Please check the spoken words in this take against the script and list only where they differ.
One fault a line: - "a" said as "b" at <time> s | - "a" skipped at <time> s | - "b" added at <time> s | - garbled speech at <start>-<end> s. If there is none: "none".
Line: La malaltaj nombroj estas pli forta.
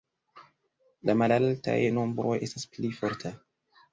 none